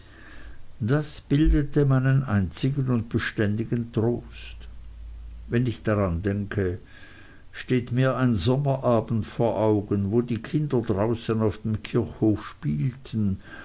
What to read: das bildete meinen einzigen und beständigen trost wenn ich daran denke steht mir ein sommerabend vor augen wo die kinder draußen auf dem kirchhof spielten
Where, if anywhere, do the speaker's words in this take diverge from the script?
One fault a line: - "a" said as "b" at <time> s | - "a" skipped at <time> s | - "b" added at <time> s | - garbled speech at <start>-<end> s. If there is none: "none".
none